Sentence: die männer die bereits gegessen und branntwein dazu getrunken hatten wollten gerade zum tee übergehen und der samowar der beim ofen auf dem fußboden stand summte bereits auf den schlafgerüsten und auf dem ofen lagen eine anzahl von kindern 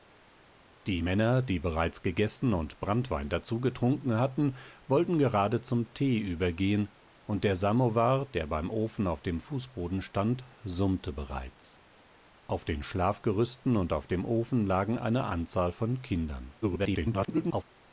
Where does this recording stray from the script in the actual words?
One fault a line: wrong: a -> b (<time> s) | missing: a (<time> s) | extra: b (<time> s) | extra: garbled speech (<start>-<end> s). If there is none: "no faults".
extra: garbled speech (16.6-17.6 s)